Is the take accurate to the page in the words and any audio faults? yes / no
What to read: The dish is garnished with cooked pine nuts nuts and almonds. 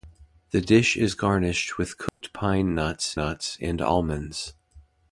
no